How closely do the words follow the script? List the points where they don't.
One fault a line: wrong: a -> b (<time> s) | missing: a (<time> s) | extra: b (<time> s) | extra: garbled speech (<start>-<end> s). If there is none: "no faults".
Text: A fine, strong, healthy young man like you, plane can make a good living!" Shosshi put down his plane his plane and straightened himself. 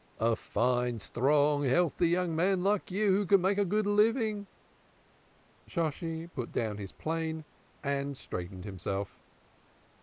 wrong: plane -> who (3.1 s)
missing: his plane (7.5 s)